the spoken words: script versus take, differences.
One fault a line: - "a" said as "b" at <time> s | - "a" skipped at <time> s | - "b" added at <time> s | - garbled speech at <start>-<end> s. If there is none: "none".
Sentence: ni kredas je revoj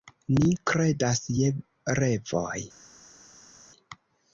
none